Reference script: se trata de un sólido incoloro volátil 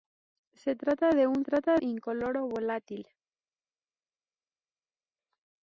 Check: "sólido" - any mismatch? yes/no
yes